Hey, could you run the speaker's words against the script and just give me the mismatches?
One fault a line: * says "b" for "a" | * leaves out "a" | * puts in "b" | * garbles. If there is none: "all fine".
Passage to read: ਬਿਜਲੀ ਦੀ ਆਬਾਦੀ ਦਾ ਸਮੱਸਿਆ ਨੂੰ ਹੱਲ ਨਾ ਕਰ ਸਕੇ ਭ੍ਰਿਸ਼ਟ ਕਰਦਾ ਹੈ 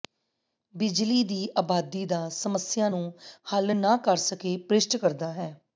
all fine